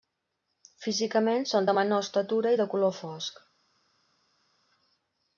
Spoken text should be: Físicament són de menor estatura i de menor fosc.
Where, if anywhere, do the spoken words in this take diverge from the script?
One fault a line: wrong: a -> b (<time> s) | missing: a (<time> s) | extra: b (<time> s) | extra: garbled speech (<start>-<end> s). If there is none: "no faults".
wrong: menor -> color (2.7 s)